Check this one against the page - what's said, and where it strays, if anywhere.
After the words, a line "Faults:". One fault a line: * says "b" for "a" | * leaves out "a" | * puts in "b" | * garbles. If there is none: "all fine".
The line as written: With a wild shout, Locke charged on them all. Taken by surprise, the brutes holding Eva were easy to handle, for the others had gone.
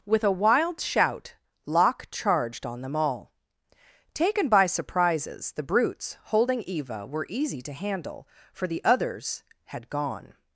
With a wild shout, Locke charged on them all. Taken by surprises, the brutes holding Eva were easy to handle, for the others had gone.
Faults:
* says "surprises" for "surprise"